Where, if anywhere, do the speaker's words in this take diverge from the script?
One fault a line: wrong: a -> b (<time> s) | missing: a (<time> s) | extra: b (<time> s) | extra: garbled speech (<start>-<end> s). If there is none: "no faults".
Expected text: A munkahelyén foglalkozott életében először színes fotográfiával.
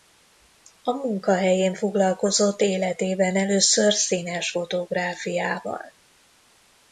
no faults